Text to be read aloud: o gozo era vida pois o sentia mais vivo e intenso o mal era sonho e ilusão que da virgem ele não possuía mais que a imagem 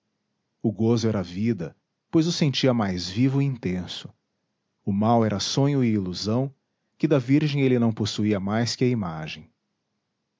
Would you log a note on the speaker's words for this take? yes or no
no